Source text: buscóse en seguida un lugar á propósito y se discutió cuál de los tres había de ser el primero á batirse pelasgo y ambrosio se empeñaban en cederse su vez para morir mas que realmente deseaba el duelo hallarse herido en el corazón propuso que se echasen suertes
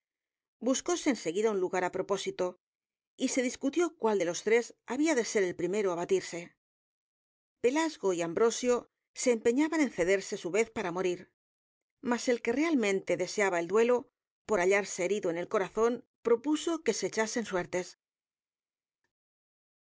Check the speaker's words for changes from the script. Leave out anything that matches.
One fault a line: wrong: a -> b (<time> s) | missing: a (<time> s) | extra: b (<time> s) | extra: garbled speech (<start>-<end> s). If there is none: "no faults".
extra: el (12.3 s)
extra: por (14.5 s)